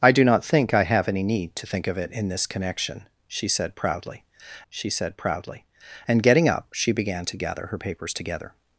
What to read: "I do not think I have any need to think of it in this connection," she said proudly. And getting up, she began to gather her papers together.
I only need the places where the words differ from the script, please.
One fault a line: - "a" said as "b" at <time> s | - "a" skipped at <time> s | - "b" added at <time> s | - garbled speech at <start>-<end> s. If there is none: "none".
- "she said proudly" added at 4.7 s